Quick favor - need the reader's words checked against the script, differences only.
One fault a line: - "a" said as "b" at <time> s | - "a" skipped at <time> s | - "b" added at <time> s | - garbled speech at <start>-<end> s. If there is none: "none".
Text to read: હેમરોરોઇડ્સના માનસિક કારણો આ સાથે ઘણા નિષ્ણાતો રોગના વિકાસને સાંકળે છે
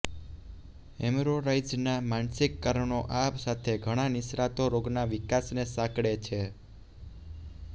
none